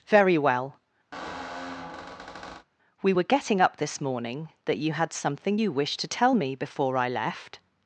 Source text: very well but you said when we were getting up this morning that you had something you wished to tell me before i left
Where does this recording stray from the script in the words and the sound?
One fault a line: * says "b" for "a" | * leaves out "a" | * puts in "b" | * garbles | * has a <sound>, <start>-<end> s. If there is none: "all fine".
* leaves out "but you said when"
* has a squeak, 1.1-2.7 s